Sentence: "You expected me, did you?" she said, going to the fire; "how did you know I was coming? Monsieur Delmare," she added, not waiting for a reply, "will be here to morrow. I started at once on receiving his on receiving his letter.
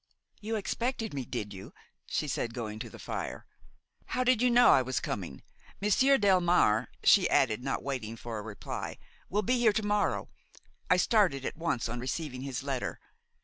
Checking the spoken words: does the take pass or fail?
fail